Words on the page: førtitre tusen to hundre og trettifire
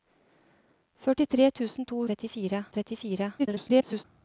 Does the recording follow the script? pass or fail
fail